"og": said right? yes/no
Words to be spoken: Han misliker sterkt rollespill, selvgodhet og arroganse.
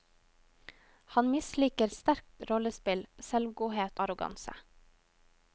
no